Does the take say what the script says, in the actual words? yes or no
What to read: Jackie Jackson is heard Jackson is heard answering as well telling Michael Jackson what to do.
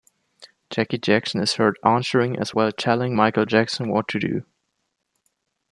no